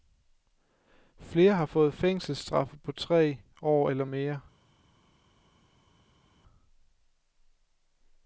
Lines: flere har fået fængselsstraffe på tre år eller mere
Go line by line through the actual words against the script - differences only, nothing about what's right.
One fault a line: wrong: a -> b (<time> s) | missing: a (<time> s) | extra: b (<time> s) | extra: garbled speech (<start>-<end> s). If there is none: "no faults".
no faults